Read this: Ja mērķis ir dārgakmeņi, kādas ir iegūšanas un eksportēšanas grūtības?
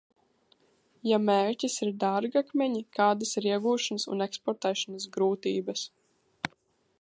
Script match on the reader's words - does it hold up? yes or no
yes